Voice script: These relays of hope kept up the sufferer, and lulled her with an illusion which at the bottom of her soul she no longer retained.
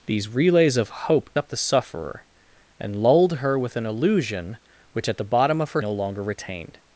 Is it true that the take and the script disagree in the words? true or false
true